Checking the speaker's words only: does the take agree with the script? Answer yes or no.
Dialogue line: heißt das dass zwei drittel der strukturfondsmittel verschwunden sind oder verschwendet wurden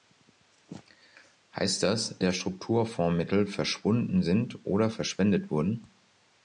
no